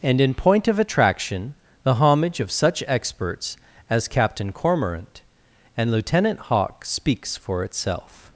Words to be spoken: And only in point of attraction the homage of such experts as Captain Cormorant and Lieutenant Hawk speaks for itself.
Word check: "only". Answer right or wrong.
wrong